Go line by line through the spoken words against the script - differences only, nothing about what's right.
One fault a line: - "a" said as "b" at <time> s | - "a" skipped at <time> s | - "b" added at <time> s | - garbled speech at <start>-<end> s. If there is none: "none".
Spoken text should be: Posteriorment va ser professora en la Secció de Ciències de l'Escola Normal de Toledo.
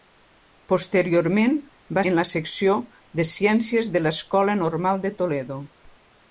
- "ser professora" skipped at 2.0 s